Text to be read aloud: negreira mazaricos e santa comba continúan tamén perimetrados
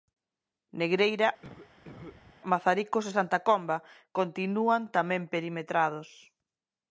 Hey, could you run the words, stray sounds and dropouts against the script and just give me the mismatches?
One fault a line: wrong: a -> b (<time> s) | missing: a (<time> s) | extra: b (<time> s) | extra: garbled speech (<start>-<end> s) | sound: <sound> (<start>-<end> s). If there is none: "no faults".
sound: cough (1.4-2.4 s)